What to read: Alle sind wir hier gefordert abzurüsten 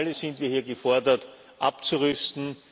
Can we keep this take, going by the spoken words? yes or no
yes